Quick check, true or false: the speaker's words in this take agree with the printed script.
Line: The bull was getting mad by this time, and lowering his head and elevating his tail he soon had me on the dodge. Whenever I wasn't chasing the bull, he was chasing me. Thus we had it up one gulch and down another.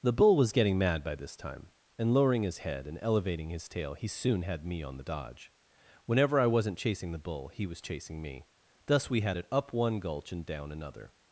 true